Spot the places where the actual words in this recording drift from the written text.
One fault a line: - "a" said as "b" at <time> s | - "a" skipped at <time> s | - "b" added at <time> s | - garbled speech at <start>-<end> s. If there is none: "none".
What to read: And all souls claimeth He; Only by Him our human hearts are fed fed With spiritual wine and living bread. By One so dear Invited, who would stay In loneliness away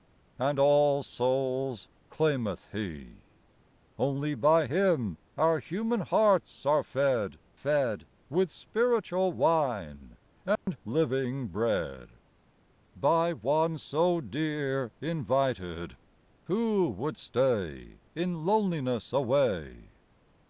none